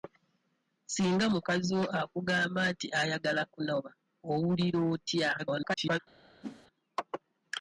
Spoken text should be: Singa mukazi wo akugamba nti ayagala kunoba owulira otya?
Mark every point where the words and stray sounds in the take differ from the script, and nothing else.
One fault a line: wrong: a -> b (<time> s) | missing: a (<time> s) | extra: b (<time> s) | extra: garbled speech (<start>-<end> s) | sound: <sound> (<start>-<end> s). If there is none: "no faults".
extra: garbled speech (5.4-6.0 s)
sound: whoosh (6.4-6.7 s)